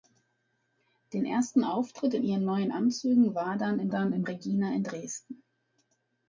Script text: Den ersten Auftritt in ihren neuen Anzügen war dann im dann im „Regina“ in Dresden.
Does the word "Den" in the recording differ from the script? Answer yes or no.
no